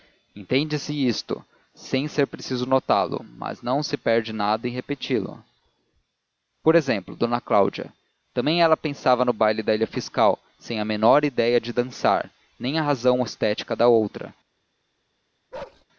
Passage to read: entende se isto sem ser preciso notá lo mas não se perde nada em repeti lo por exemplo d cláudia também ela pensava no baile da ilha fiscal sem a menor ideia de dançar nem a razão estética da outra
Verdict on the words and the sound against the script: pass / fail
fail